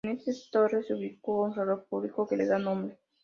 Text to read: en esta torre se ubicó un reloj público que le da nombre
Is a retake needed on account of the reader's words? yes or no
no